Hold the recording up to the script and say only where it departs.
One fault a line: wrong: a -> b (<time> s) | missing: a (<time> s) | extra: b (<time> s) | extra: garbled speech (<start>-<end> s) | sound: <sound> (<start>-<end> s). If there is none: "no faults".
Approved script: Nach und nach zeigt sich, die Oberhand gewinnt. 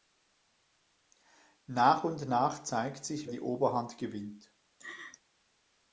sound: laugh (4.8-5.2 s)